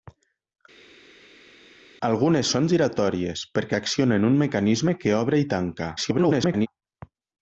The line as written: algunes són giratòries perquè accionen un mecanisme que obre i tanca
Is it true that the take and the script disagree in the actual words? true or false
true